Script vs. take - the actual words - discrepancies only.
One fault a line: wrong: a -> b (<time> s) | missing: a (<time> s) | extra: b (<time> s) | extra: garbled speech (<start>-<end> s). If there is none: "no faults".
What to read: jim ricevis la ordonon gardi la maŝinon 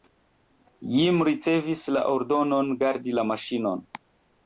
no faults